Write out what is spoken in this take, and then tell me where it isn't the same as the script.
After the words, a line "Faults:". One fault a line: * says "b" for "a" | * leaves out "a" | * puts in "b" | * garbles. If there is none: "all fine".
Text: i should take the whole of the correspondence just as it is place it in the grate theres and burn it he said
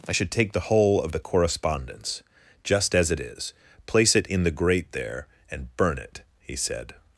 i should take the whole of the correspondence just as it is place it in the grate there and burn it he said
Faults:
* says "there" for "theres"